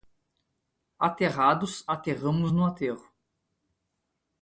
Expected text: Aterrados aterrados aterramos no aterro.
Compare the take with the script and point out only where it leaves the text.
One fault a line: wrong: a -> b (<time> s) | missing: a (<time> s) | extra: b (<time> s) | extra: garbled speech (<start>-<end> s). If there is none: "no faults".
missing: aterrados (1.9 s)